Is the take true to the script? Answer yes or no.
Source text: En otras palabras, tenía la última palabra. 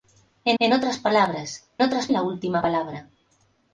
no